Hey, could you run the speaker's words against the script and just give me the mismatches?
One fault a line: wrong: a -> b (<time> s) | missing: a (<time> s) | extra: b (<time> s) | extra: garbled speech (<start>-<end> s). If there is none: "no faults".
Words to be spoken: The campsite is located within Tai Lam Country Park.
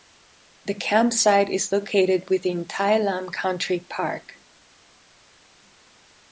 no faults